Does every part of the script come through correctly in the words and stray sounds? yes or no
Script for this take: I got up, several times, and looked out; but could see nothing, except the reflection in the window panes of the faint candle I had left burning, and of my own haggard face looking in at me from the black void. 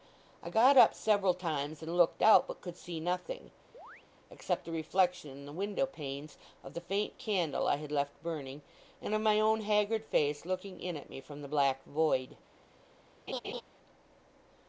no